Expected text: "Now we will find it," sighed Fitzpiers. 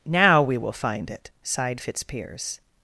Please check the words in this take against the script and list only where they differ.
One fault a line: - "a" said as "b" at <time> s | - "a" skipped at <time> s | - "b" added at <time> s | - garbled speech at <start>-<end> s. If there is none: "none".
none